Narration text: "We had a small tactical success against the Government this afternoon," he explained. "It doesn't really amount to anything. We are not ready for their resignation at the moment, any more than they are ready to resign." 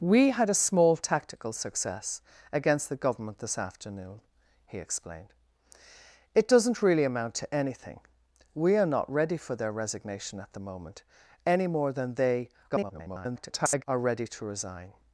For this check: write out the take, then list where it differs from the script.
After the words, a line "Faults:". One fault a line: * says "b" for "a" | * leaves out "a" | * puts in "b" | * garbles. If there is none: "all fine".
"We had a small tactical success against the Government this afternoon," he explained. "It doesn't really amount to anything. We are not ready for their resignation at the moment, any more than they [garbled] are ready to resign."
Faults:
* garbles